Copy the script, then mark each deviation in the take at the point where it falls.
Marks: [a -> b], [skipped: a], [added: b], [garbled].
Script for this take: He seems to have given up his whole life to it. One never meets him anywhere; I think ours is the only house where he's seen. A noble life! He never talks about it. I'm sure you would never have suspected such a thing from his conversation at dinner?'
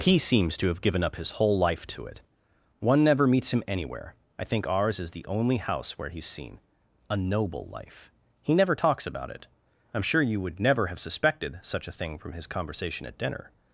He seems to have given up his whole life to it. One never meets him anywhere; I think ours is the only house where he's seen. A noble life! He never talks about it. I'm sure you would never have suspected such a thing from his conversation at dinner?'